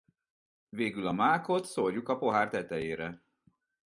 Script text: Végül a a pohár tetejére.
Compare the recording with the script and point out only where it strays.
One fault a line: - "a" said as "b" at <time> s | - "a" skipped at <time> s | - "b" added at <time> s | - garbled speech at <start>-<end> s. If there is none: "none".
- "mákot szórjuk" added at 1.1 s